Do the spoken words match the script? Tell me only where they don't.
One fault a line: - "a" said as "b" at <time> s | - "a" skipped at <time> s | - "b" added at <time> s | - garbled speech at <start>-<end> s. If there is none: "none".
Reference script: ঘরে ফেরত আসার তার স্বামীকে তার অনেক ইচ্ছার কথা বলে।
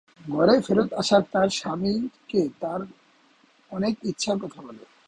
none